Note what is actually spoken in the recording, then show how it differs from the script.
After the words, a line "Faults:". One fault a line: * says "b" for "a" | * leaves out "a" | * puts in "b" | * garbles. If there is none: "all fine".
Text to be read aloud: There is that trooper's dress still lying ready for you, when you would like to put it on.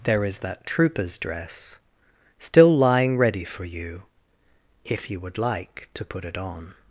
There is that trooper's dress still lying ready for you, if you would like to put it on.
Faults:
* says "if" for "when"